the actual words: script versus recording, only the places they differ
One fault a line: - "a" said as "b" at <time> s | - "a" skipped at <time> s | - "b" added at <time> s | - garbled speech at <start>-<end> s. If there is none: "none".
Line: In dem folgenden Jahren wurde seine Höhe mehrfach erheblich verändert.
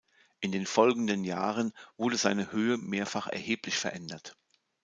- "dem" said as "den" at 0.5 s